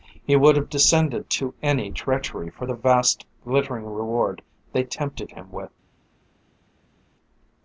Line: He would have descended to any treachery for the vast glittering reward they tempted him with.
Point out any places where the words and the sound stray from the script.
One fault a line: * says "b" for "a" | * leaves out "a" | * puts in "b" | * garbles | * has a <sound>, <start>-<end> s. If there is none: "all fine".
all fine